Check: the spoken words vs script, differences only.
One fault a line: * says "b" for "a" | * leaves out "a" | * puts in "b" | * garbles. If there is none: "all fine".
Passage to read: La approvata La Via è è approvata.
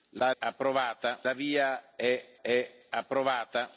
all fine